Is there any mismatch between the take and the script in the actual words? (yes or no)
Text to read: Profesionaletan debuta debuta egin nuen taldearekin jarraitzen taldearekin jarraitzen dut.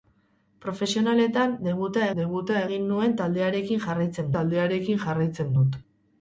no